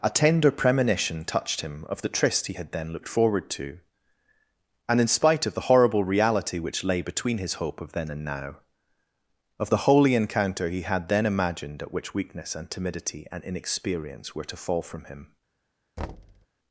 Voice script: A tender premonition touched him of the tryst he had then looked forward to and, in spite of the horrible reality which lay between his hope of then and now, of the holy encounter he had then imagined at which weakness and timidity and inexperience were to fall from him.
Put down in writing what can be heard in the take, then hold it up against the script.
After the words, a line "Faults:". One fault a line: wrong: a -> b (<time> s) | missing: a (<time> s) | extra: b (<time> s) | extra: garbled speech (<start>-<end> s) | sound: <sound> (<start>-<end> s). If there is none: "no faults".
A tender premonition touched him of the tryst he had then looked forward to and, in spite of the horrible reality which lay between his hope of then and now, of the holy encounter he had then imagined at which weakness and timidity and inexperience were to fall from him.
Faults:
sound: thud (16.0-16.5 s)